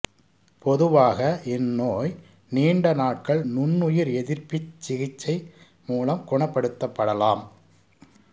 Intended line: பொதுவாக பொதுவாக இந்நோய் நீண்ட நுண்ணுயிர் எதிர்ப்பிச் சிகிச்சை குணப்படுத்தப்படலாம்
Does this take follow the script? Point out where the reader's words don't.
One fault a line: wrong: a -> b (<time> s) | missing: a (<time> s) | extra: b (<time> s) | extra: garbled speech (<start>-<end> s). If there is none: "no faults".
missing: பொதுவாக (1.2 s)
extra: நாட்கள் (2.9 s)
extra: மூலம் (5.9 s)